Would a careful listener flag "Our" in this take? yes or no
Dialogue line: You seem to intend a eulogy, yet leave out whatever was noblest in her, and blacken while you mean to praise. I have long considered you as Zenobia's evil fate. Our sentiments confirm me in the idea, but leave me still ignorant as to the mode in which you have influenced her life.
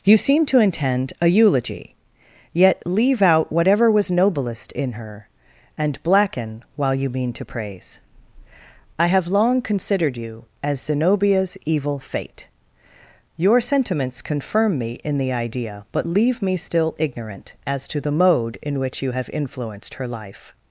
yes